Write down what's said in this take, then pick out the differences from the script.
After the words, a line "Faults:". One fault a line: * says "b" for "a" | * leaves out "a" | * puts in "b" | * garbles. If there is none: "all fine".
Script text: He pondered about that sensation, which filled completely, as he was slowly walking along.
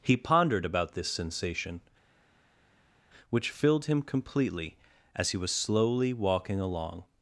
He pondered about this sensation, which filled him completely, as he was slowly walking along.
Faults:
* says "this" for "that"
* puts in "him"